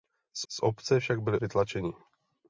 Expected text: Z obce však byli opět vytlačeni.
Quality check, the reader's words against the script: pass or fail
fail